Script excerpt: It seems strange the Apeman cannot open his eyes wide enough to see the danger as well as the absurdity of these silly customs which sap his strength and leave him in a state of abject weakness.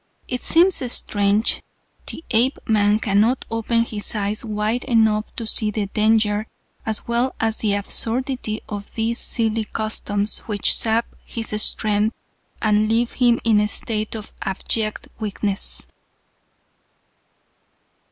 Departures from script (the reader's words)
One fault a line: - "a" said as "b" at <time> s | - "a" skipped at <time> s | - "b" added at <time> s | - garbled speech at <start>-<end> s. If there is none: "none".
none